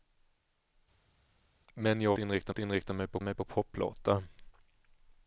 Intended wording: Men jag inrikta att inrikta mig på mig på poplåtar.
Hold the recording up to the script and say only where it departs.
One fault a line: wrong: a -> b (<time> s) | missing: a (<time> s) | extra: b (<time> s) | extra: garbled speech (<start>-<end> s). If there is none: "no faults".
no faults